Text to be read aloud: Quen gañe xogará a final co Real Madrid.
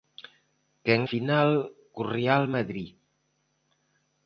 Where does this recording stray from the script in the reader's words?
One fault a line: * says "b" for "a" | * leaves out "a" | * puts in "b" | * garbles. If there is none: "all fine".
* leaves out "gañe xogará a"